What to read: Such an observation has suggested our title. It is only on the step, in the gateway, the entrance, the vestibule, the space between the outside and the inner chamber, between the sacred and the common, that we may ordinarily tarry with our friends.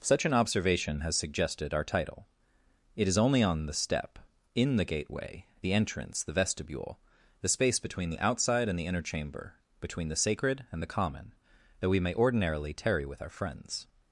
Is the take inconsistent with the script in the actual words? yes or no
no